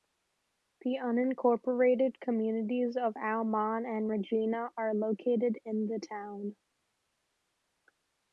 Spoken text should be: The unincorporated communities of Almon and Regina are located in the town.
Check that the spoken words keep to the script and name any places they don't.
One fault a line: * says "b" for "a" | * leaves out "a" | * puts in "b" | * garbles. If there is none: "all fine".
all fine